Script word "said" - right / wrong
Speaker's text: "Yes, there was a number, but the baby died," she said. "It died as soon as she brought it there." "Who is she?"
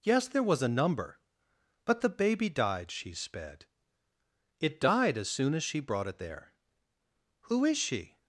wrong